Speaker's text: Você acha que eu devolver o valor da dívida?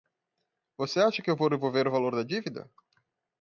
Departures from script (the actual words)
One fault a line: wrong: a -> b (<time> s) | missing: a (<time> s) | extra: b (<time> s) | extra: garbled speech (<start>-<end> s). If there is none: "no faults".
extra: vou (1.4 s)